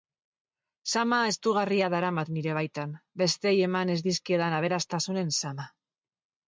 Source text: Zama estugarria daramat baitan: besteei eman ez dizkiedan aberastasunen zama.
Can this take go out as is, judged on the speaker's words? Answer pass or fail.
fail